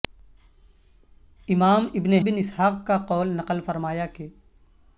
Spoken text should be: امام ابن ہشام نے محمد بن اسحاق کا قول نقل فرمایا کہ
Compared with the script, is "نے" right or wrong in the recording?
wrong